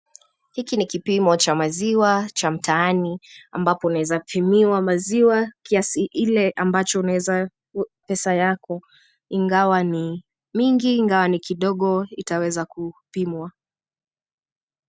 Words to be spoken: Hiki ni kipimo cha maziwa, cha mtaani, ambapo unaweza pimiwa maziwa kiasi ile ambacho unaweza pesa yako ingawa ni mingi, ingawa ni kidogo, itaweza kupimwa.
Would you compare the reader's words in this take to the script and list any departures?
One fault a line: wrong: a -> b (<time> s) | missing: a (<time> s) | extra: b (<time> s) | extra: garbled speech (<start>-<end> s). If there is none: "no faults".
no faults